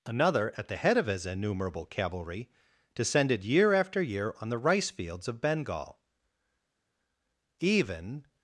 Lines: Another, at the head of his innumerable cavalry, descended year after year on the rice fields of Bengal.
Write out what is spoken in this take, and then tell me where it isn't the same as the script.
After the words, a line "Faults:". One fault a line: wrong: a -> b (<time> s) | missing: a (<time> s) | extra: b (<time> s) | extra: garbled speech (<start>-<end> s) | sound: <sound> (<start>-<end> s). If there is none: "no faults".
Another, at the head of his innumerable cavalry, descended year after year on the rice fields of Bengal. Even
Faults:
extra: Even (7.6 s)